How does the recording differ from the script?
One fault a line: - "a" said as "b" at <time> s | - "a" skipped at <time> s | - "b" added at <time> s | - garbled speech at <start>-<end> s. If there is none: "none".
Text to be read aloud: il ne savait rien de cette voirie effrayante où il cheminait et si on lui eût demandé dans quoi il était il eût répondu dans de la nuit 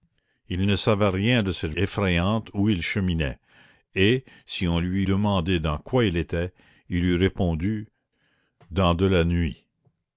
- "voirie" skipped at 1.8 s
- "eût" skipped at 5.0 s